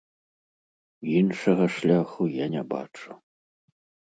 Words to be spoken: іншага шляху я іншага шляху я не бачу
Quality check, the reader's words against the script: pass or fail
fail